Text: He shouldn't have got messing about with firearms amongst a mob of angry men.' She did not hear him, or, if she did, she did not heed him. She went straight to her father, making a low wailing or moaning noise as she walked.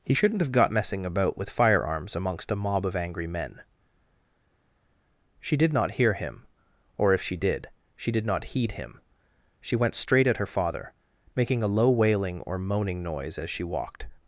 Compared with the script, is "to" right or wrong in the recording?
wrong